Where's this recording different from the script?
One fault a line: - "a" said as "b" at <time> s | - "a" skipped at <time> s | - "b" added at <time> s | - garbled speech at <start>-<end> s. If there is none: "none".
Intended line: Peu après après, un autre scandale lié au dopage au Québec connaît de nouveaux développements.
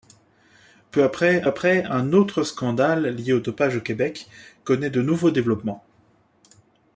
none